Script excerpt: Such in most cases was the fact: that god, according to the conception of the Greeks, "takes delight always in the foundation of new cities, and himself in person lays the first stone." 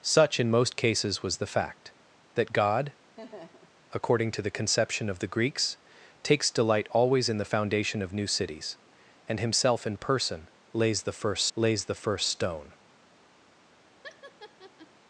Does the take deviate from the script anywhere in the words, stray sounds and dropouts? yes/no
yes